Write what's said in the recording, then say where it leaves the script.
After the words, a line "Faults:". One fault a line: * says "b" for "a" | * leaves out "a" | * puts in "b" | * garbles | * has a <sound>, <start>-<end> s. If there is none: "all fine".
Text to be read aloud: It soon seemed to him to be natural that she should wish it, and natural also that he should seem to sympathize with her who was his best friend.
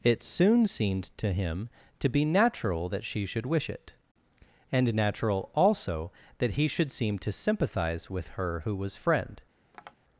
It soon seemed to him to be natural that she should wish it, and natural also that he should seem to sympathize with her who was friend.
Faults:
* leaves out "his best"
* has a tap, 9.7-10.0 s